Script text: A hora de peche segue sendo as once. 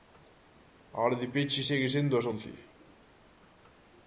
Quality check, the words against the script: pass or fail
pass